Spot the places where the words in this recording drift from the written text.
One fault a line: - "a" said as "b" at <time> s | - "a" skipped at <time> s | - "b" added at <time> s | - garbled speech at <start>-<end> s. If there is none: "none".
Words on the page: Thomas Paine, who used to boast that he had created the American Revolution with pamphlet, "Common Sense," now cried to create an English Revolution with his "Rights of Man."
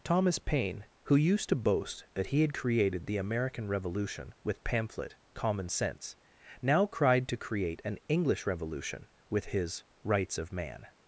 none